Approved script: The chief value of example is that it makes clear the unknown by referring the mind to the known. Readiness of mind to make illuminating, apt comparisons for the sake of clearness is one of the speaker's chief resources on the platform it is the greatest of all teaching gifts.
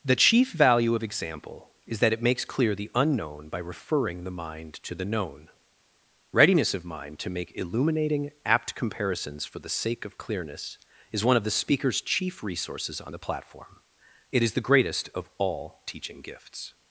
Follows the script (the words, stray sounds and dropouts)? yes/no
yes